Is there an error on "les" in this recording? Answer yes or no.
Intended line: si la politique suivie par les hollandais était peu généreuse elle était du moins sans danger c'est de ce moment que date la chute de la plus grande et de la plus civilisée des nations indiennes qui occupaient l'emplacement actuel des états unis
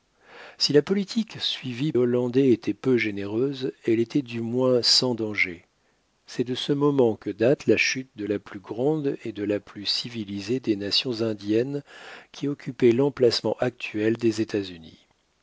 yes